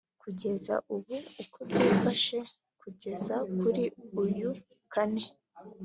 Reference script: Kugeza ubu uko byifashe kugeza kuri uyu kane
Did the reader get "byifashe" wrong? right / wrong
right